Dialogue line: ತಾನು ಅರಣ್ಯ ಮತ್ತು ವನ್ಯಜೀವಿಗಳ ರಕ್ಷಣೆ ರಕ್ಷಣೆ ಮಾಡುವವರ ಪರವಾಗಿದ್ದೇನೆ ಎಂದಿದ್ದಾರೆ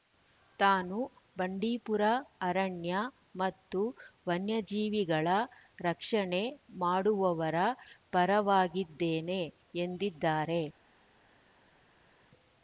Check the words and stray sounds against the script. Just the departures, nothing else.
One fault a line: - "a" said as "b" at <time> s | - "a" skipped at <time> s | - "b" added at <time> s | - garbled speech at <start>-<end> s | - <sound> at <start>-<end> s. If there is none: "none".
- "ಬಂಡೀಪುರ" added at 1.4 s
- "ರಕ್ಷಣೆ" skipped at 6.4 s